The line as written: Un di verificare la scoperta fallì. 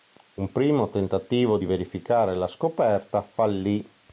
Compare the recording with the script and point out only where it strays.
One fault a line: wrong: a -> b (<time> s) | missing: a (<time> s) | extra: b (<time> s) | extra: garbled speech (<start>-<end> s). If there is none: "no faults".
extra: primo tentativo (0.5 s)